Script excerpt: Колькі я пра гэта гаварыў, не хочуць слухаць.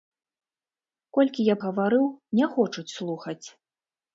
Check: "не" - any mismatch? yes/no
no